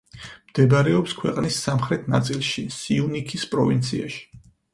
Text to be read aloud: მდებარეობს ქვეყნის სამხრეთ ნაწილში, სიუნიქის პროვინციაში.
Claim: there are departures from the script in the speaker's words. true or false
false